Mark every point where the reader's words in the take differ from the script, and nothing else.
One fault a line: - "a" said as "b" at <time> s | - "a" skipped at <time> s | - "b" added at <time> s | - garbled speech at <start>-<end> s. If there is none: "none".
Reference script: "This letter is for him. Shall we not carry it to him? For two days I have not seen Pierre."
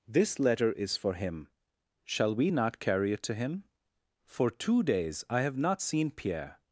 none